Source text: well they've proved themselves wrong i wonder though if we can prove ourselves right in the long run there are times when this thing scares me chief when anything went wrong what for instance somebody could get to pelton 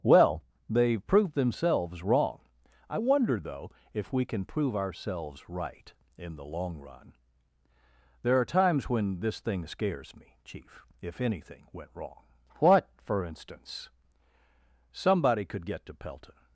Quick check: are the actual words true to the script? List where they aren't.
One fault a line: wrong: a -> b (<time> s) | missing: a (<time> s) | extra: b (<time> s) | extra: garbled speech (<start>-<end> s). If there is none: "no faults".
wrong: when -> if (11.0 s)